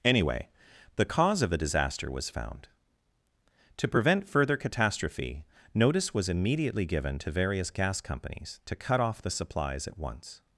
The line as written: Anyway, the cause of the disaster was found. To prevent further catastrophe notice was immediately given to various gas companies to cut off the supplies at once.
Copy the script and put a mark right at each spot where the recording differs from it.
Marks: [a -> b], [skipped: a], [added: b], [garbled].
Anyway, the cause of the disaster was found. To prevent further catastrophe notice was immediately given to various gas companies to cut off the supplies at once.